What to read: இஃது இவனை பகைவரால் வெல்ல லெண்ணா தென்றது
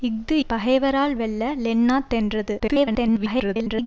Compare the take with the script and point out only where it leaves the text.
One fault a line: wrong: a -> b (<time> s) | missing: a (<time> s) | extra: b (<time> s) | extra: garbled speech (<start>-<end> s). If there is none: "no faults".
missing: இவனை (0.3 s)
extra: garbled speech (2.6-3.9 s)